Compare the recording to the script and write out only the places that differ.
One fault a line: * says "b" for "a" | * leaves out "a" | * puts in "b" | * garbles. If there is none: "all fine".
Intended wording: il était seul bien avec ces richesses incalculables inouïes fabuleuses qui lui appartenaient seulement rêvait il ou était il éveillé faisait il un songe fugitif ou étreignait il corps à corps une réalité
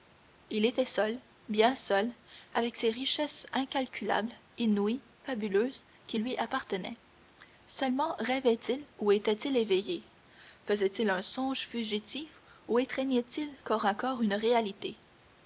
* puts in "seul"